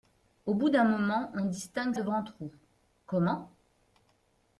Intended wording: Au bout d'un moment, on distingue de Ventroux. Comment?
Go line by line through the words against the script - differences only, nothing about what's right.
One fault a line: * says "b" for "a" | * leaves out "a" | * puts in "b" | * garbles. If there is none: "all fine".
all fine